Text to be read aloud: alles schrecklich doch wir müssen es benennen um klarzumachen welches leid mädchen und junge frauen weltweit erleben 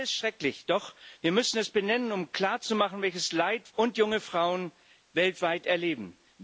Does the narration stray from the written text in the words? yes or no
yes